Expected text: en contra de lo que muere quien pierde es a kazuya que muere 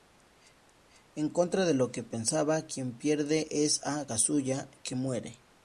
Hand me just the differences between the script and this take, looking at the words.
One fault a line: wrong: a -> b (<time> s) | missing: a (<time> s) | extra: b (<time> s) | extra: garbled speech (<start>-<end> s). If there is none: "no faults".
wrong: muere -> pensaba (2.0 s)